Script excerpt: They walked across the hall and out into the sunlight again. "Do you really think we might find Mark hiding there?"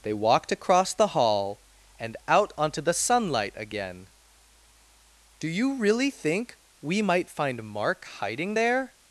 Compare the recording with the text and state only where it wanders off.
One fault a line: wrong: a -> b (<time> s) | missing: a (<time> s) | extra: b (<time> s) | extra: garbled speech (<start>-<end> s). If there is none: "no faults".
wrong: into -> onto (2.6 s)